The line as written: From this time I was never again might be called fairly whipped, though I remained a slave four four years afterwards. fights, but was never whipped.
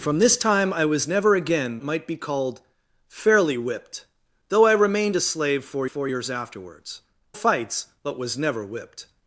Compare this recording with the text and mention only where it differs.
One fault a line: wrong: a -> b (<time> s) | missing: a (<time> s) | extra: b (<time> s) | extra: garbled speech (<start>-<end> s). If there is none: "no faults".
no faults